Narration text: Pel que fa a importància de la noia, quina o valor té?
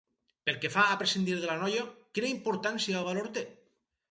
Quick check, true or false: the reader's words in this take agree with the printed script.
false